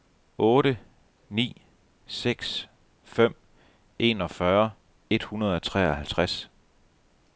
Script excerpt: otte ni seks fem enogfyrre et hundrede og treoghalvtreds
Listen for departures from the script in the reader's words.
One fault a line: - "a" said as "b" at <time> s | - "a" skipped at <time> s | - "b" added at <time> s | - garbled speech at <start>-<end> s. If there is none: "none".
none